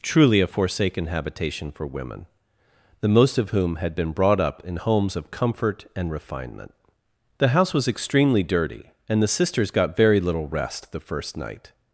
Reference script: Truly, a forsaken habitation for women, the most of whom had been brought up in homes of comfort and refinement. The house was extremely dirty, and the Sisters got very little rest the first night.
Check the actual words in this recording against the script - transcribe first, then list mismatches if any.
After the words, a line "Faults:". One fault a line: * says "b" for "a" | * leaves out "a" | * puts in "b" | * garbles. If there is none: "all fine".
Truly, a forsaken habitation for women, the most of whom had been brought up in homes of comfort and refinement. The house was extremely dirty, and the Sisters got very little rest the first night.
Faults:
all fine